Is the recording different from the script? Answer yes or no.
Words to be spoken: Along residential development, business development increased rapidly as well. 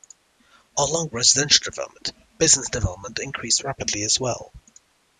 no